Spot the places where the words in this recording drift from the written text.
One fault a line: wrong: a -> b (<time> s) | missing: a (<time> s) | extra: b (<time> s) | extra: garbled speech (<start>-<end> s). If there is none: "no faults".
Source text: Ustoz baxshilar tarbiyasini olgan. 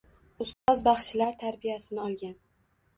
no faults